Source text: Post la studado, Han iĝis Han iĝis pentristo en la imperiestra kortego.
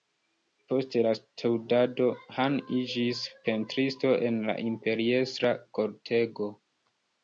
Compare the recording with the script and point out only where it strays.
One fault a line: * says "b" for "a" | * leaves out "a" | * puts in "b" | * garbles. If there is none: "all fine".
* leaves out "Han iĝis"